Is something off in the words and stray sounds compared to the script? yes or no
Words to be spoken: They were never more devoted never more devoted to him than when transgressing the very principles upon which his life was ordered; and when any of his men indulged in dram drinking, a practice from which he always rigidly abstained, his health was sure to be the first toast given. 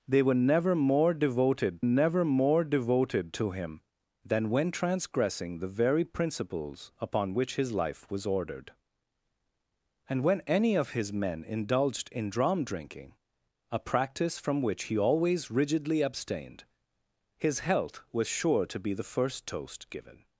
no